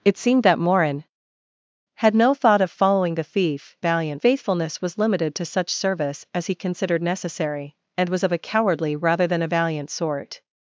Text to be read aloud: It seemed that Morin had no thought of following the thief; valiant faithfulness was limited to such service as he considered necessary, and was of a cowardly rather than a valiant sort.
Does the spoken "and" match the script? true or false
true